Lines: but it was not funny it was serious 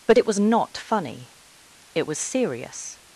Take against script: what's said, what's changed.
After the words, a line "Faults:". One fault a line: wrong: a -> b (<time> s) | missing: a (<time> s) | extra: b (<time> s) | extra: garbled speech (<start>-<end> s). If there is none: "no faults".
but it was not funny it was serious
Faults:
no faults